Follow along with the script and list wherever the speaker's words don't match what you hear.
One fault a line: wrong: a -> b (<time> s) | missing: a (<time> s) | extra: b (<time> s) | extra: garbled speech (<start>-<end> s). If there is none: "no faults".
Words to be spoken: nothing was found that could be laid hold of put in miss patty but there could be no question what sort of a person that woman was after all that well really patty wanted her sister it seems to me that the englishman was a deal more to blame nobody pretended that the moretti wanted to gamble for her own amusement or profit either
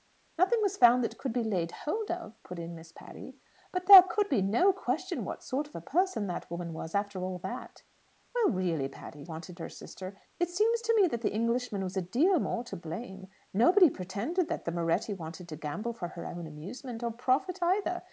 no faults